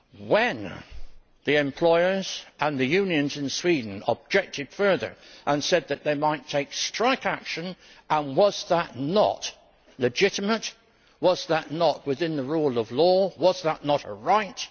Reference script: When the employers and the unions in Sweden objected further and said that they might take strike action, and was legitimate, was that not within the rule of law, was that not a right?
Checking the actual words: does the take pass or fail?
fail